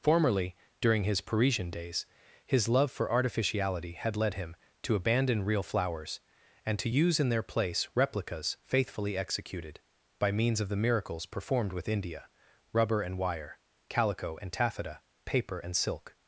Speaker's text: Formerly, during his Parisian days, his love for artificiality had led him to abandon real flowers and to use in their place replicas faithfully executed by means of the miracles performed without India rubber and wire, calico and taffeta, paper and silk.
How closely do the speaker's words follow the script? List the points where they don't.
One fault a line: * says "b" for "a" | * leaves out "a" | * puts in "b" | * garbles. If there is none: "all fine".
* says "with" for "without"